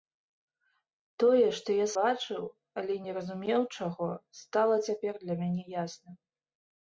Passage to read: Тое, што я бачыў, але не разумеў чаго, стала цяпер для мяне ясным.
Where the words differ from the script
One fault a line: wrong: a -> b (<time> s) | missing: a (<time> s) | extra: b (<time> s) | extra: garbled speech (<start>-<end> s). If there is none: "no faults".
no faults